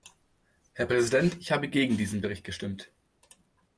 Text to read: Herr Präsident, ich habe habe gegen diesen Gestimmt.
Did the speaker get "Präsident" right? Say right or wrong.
right